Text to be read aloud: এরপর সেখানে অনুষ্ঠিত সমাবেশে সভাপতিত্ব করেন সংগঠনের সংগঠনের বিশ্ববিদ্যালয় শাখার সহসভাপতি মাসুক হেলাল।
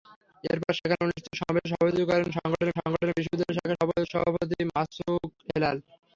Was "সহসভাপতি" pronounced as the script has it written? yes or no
yes